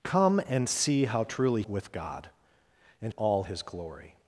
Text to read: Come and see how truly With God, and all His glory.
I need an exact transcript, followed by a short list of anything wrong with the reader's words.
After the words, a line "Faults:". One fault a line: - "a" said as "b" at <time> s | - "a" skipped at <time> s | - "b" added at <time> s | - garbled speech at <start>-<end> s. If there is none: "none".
Come and see how truly With God, and all His glory.
Faults:
none